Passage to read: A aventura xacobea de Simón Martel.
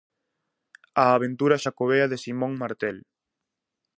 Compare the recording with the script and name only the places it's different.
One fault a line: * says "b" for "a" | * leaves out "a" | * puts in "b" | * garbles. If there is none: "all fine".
all fine